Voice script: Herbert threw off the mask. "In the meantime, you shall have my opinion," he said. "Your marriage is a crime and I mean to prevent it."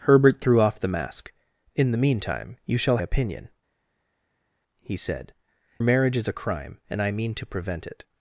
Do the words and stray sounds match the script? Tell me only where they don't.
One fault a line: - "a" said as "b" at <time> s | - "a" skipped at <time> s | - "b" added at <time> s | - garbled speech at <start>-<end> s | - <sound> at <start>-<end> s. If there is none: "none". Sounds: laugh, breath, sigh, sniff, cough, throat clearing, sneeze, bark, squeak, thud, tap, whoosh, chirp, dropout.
- "have my" skipped at 3.0 s
- "Your" skipped at 5.3 s